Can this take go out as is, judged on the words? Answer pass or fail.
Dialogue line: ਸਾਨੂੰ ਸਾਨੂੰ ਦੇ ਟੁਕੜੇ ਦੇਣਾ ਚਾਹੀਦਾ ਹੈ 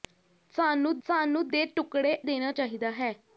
pass